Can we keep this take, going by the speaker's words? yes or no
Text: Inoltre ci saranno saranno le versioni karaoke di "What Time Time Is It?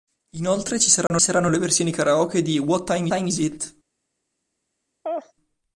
yes